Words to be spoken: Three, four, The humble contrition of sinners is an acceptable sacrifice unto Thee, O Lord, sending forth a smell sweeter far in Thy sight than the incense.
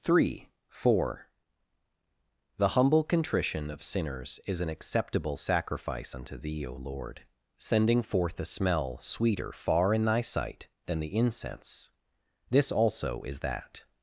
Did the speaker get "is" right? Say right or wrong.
right